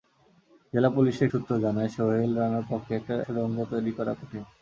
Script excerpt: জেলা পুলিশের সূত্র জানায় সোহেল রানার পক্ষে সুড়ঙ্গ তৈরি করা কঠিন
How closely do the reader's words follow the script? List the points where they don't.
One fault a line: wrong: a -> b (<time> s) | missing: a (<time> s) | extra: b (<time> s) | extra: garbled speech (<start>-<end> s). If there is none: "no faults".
no faults